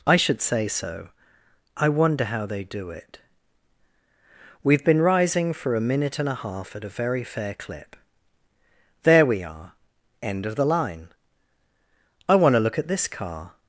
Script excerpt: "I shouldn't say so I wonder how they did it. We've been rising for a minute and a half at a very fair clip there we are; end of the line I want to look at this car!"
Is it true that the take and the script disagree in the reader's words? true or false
true